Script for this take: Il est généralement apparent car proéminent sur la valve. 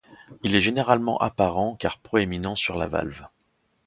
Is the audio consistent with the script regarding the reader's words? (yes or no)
yes